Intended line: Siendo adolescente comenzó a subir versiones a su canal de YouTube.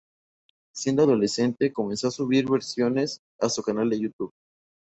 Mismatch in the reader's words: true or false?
false